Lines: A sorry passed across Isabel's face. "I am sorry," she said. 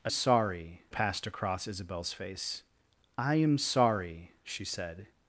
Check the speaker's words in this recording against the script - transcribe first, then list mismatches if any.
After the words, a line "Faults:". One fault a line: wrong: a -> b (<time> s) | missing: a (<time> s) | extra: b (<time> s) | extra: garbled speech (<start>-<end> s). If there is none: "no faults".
A sorry passed across Isabel's face. "I am sorry," she said.
Faults:
no faults